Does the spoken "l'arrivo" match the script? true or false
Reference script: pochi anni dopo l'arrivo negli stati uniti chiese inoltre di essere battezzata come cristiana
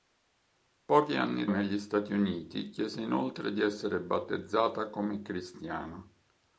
false